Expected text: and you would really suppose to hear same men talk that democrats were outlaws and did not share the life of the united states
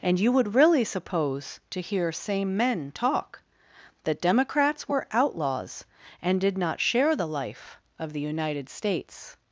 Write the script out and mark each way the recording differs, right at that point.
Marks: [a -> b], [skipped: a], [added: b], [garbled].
and you would really suppose to hear same men talk that democrats were outlaws and did not share the life of the united states